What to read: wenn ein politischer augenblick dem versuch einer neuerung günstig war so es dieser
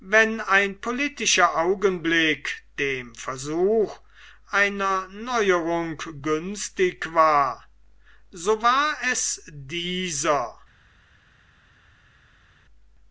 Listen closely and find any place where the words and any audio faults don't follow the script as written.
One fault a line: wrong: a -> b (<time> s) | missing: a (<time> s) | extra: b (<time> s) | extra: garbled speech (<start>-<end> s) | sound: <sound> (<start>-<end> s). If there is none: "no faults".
extra: war (8.6 s)